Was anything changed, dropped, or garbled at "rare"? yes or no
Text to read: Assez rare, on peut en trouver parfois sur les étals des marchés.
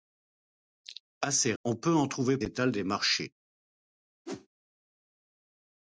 yes